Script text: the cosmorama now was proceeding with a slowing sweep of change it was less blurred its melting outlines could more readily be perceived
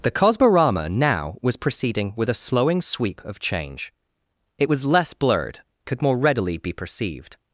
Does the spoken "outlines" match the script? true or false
false